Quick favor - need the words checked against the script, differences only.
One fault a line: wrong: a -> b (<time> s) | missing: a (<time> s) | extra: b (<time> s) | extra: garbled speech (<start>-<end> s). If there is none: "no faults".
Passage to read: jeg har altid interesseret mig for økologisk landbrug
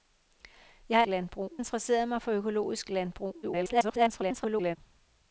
wrong: altid -> landbrug (1.1 s)
extra: garbled speech (3.4-4.8 s)